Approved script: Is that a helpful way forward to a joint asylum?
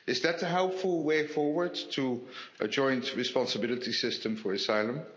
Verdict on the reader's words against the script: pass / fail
fail